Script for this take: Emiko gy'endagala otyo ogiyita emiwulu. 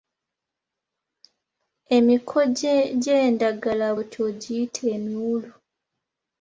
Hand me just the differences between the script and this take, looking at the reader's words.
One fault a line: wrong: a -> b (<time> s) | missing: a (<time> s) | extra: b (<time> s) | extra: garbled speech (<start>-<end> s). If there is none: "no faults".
no faults